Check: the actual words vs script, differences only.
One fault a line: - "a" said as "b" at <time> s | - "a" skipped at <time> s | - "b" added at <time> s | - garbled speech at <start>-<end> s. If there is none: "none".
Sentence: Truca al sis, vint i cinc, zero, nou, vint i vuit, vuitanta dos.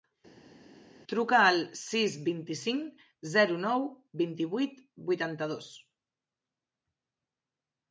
none